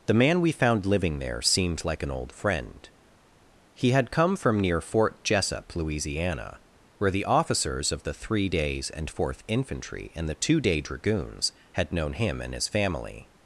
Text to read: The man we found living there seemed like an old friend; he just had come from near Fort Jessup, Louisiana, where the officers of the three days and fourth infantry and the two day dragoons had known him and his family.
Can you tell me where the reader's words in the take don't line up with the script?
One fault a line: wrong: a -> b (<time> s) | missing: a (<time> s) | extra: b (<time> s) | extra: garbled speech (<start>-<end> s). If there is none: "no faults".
missing: just (3.9 s)